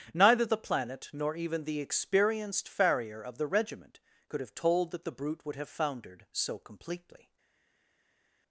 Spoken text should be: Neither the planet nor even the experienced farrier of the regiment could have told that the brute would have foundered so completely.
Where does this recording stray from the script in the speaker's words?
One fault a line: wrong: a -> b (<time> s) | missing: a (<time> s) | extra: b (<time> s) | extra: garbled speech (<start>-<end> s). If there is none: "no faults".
no faults